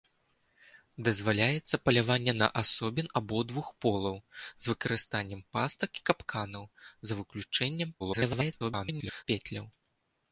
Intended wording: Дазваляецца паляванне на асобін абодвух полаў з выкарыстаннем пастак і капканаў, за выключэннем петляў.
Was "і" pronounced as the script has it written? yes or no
yes